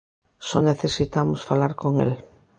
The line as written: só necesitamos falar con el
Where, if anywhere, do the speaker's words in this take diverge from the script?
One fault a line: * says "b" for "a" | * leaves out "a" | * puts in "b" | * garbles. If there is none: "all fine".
all fine